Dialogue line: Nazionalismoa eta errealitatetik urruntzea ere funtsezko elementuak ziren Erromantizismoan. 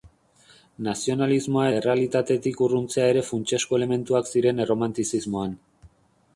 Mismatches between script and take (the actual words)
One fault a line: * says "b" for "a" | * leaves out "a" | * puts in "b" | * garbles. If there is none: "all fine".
* leaves out "eta"